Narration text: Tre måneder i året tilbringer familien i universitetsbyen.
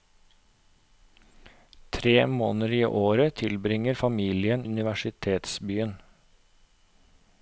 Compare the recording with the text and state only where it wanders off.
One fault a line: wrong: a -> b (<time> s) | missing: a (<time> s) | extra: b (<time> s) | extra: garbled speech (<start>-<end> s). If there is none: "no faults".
missing: i (4.7 s)